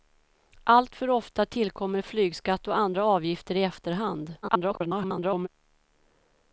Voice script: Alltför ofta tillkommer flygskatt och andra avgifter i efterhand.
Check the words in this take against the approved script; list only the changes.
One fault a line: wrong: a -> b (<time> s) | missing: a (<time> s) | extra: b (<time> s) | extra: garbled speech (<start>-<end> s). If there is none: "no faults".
extra: garbled speech (4.4-5.5 s)